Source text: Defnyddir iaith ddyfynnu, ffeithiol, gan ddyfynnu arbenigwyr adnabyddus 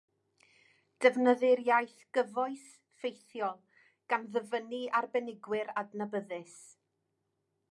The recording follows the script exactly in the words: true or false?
false